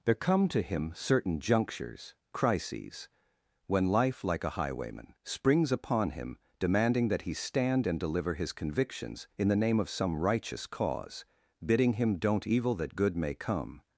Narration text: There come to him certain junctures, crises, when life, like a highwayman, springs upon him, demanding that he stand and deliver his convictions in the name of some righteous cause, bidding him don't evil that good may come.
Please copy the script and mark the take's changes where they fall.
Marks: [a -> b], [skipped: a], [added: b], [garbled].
There come to him certain junctures, crises, when life, like a highwayman, springs upon him, demanding that he stand and deliver his convictions in the name of some righteous cause, bidding him don't evil that good may come.